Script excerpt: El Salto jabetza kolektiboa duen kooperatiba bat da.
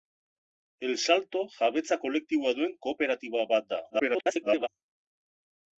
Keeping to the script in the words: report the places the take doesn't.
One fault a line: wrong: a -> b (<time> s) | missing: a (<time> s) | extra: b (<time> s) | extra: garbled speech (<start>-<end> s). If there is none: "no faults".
extra: garbled speech (3.9-4.7 s)